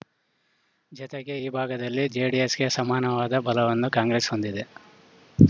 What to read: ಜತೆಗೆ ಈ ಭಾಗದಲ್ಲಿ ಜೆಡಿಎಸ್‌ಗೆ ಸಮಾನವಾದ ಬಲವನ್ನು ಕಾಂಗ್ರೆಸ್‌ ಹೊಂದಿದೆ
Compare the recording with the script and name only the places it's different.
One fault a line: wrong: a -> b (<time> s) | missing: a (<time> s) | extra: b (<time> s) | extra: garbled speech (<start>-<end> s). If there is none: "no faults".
no faults